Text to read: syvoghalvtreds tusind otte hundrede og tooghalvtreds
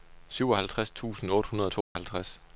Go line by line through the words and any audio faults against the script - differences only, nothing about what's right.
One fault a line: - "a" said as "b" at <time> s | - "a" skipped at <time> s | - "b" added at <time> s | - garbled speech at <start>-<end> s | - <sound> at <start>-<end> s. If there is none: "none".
- dropout at 1.8-2.0 s